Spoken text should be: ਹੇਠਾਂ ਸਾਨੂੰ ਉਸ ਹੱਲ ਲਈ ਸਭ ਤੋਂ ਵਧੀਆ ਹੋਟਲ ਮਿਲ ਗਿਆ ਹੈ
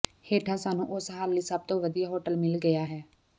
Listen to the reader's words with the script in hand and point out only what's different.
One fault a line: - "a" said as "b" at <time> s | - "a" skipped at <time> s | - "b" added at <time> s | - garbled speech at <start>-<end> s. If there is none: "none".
none